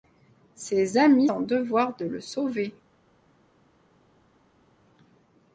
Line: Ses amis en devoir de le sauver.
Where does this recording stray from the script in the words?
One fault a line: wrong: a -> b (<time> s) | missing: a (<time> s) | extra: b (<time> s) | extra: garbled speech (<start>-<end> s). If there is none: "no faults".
no faults